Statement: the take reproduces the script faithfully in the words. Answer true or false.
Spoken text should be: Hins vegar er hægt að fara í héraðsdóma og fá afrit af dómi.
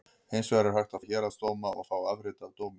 false